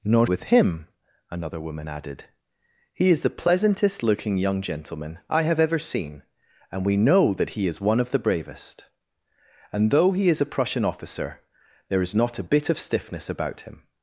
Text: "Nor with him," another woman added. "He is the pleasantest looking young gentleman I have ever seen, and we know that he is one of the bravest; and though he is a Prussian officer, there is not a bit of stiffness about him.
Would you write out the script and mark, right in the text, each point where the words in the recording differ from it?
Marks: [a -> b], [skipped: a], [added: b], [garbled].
"Nor with him," another woman added. "He is the pleasantest looking young gentleman I have ever seen, and we know that he is one of the bravest; and though he is a Prussian officer, there is not a bit of stiffness about him.